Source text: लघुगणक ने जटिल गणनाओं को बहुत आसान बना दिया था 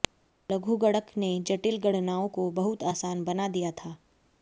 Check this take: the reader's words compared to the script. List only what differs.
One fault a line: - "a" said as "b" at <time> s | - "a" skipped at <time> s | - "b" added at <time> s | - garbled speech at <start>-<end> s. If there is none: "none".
none